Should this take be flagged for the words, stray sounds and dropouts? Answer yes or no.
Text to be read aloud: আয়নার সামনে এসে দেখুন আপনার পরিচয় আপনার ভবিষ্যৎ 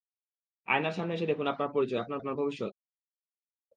yes